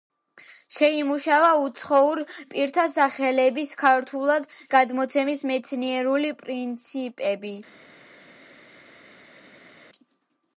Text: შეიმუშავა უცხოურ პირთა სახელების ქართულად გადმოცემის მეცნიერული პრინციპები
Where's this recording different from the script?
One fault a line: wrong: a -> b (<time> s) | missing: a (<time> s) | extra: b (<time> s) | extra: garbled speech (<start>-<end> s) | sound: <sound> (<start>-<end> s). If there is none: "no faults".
no faults